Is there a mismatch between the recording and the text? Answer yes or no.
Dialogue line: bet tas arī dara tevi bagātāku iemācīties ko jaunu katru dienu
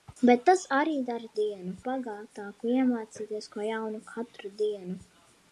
yes